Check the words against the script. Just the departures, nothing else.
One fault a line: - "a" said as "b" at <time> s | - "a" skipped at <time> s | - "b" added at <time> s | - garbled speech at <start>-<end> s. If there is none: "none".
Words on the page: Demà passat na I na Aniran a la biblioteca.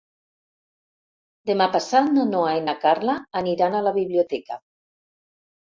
- "Noa" added at 2.3 s
- "Carla" added at 2.9 s